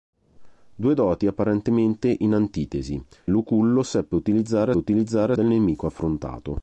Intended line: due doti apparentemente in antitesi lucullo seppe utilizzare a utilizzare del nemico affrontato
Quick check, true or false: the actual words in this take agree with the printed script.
true